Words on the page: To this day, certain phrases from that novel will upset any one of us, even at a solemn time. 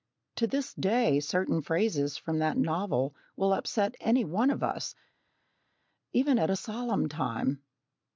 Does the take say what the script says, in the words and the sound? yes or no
yes